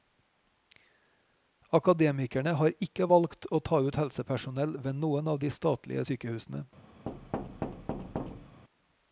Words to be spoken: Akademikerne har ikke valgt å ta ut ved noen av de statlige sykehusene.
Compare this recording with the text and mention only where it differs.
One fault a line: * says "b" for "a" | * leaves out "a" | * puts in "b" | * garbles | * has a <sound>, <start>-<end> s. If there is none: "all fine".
* puts in "helsepersonell"
* has a thud, 7.1-8.6 s